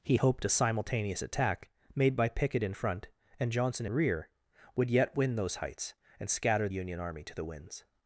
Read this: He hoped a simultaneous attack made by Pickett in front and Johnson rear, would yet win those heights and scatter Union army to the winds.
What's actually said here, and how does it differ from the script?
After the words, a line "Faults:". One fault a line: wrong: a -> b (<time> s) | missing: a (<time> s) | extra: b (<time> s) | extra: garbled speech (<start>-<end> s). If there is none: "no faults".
He hoped a simultaneous attack made by Pickett in front and Johnson rear, would yet win those heights and scatter Union army to the winds.
Faults:
no faults